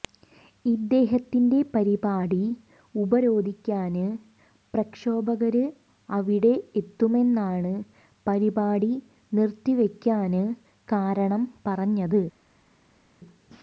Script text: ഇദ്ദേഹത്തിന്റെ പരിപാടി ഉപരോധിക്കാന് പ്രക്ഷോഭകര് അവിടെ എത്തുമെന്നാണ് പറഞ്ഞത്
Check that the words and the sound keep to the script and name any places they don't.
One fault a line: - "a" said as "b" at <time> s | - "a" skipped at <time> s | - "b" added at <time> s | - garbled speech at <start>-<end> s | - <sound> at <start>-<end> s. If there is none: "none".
- "പരിപാടി നിര്ത്തിവെക്കാന് കാരണം" added at 8.3 s